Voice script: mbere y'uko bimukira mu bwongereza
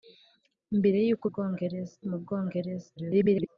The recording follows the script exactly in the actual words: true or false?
false